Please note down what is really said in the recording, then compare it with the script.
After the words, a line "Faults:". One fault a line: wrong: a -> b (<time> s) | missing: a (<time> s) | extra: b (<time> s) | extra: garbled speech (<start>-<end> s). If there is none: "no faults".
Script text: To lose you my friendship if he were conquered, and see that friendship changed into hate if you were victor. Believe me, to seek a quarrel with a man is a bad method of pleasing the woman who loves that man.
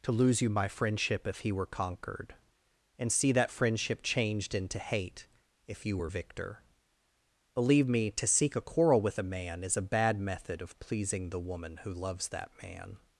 To lose you my friendship if he were conquered, and see that friendship changed into hate if you were victor. Believe me, to seek a quarrel with a man is a bad method of pleasing the woman who loves that man.
Faults:
no faults